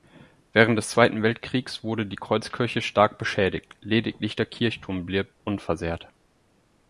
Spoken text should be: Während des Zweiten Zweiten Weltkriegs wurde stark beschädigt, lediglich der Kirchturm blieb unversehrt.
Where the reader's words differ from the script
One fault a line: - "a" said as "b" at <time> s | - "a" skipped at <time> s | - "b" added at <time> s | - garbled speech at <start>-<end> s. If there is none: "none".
- "Zweiten" skipped at 1.2 s
- "die Kreuzkirche" added at 2.1 s